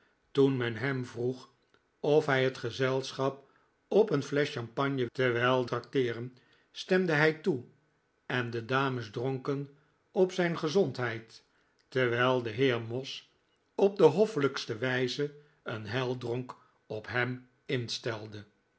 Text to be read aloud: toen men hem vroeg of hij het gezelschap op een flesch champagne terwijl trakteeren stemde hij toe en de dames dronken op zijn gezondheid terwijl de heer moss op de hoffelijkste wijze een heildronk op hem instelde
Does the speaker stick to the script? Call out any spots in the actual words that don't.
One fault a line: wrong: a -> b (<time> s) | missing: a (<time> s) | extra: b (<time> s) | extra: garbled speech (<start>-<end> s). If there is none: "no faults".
no faults